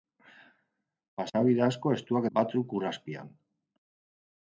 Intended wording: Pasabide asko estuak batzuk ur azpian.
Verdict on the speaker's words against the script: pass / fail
pass